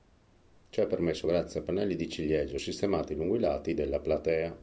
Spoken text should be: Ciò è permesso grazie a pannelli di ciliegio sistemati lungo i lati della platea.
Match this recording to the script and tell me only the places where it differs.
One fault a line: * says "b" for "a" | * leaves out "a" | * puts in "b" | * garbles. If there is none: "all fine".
all fine